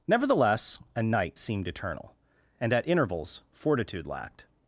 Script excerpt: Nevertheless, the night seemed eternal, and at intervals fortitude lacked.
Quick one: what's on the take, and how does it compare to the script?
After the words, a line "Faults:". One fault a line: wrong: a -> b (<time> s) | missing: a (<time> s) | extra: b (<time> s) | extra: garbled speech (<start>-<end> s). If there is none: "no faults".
Nevertheless, a night seemed eternal, and at intervals fortitude lacked.
Faults:
wrong: the -> a (0.9 s)